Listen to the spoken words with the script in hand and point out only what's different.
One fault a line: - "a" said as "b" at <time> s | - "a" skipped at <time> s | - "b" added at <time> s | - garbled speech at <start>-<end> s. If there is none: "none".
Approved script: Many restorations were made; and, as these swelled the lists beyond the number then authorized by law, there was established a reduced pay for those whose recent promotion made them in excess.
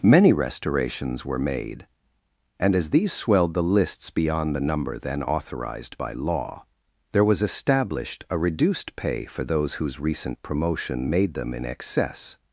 none